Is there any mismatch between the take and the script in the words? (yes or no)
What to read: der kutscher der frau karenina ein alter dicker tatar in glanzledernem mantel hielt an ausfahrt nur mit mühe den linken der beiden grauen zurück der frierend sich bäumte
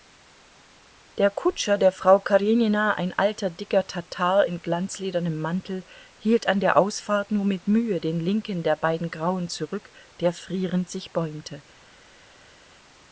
yes